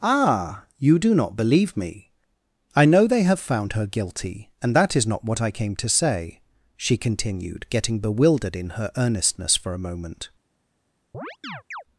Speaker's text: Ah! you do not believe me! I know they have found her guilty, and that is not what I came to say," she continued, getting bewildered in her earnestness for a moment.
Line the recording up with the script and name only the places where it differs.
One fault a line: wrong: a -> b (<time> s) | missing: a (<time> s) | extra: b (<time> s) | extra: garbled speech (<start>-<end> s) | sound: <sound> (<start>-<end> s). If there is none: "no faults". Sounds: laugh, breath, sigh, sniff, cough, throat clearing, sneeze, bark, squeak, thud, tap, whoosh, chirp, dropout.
sound: chirp (11.1-11.8 s)